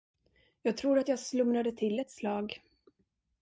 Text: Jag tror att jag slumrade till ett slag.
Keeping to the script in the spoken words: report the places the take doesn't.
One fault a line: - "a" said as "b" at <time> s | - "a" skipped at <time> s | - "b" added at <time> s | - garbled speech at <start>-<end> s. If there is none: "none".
none